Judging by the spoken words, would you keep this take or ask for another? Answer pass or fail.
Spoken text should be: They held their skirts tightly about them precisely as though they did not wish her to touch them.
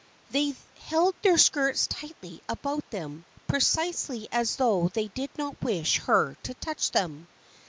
pass